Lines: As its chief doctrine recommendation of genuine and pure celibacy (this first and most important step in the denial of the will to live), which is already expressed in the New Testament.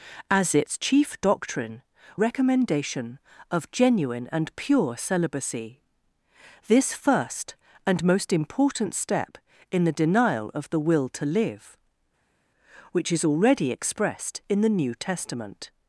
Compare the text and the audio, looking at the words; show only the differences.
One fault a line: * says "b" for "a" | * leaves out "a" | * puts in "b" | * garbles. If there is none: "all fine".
all fine